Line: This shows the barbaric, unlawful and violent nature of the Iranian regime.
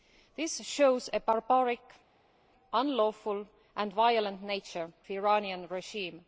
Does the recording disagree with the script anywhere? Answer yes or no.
yes